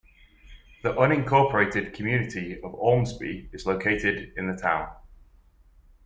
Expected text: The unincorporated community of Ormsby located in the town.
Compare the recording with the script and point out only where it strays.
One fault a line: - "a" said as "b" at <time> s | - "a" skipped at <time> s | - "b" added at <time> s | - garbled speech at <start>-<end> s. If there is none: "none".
- "is" added at 3.5 s